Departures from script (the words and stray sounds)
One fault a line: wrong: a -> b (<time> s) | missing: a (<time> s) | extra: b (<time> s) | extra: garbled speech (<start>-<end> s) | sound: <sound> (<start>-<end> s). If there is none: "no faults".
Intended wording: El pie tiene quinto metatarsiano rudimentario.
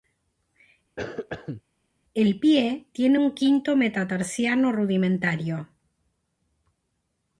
sound: cough (1.0-1.6 s)
extra: un (3.2 s)